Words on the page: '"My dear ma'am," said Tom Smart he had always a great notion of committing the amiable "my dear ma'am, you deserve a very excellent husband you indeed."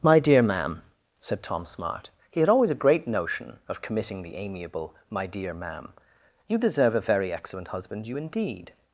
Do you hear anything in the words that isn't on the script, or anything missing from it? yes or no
no